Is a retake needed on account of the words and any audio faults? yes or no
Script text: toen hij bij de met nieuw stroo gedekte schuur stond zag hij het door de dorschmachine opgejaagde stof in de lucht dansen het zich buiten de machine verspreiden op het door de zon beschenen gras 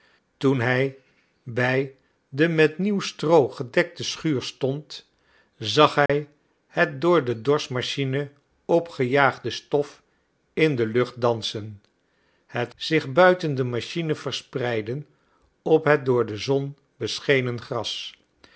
yes